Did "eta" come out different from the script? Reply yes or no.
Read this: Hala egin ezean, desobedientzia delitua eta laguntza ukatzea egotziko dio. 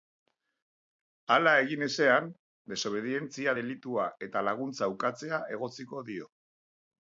no